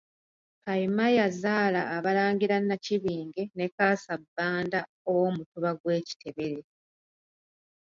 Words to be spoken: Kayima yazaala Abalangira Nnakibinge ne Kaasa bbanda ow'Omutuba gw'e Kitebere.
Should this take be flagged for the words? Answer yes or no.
no